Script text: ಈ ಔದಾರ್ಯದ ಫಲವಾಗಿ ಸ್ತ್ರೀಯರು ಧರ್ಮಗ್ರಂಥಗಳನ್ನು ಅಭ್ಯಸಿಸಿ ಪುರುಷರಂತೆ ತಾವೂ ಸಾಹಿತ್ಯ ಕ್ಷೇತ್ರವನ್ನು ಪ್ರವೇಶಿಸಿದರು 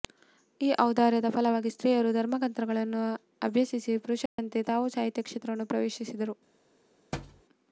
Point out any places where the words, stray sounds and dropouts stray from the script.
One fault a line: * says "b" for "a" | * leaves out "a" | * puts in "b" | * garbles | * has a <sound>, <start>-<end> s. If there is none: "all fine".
* has a dropout, 4.3-4.4 s
* has a thud, 7.1-7.4 s